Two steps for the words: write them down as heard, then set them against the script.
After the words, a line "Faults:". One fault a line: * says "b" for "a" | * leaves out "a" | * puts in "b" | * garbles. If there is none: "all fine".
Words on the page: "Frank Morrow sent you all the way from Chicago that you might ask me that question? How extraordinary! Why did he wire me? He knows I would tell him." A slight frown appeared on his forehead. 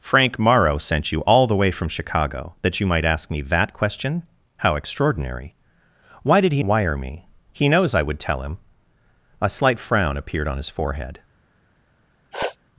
"Frank Morrow sent you all the way from Chicago that you might ask me that question? How extraordinary! Why did he wire me? He knows I would tell him." A slight frown appeared on his forehead.
Faults:
all fine